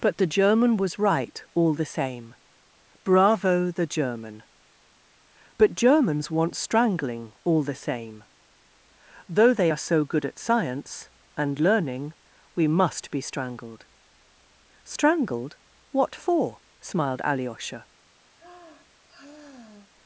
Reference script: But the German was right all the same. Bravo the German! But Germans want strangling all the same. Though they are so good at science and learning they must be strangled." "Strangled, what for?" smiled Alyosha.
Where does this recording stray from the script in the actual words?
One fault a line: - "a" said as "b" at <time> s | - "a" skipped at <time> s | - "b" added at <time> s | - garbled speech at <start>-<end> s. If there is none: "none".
- "they" said as "we" at 12.5 s